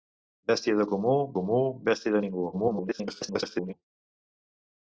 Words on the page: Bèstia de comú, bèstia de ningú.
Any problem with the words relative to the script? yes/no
yes